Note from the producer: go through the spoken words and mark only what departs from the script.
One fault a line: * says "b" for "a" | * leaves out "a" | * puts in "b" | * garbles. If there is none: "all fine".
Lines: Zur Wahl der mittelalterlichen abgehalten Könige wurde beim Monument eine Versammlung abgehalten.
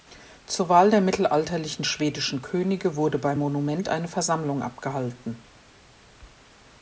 * says "schwedischen" for "abgehalten"